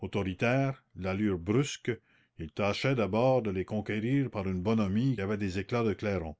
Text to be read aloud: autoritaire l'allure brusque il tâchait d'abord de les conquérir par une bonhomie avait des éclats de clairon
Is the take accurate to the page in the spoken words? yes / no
yes